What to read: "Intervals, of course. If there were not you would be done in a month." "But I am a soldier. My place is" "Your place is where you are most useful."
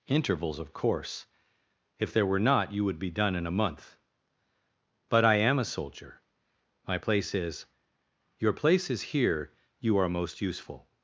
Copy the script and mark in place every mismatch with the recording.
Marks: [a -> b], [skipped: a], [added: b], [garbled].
"Intervals, of course. If there were not you would be done in a month." "But I am a soldier. My place is" "Your place is [where -> here] you are most useful."